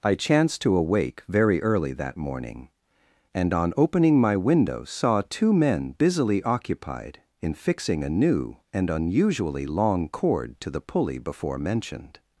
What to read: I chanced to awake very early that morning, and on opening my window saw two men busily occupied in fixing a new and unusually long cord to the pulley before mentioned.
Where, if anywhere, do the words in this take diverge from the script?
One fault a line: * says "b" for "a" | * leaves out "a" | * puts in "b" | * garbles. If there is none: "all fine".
all fine